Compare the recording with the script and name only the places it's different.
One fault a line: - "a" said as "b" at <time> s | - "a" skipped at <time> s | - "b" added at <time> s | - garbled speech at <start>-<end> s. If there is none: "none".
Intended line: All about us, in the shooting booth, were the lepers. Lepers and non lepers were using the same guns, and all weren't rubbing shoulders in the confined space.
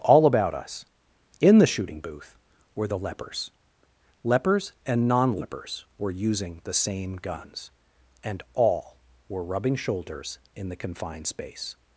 - "weren't" said as "were" at 9.3 s